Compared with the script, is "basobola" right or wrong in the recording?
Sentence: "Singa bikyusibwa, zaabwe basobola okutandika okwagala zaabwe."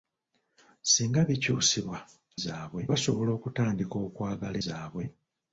right